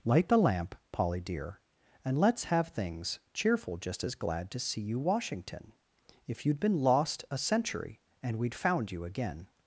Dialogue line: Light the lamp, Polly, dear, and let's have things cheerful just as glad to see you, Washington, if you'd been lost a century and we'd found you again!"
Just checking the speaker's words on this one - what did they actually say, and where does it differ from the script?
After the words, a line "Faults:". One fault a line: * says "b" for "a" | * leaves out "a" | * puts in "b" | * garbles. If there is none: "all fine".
Light the lamp, Polly, dear, and let's have things cheerful just as glad to see you, Washington, if you'd been lost a century and we'd found you again!"
Faults:
all fine